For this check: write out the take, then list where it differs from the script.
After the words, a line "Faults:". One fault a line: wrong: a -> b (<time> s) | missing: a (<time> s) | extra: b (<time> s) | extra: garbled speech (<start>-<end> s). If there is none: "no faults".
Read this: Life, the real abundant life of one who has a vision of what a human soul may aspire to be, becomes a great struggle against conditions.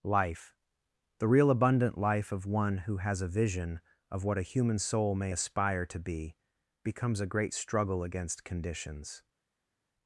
Life, the real abundant life of one who has a vision of what a human soul may aspire to be, becomes a great struggle against conditions.
Faults:
no faults